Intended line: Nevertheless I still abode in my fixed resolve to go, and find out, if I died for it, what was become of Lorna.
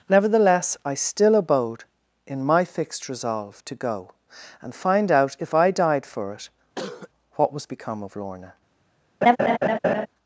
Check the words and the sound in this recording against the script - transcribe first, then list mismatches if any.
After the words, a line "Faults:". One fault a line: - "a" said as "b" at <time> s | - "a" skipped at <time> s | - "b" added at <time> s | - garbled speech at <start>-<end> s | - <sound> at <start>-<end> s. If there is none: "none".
Nevertheless I still abode in my fixed resolve to go, and find out, if I died for it, what was become of Lorna.
Faults:
- cough at 6.7-7.1 s
- laugh at 9.2-10.1 s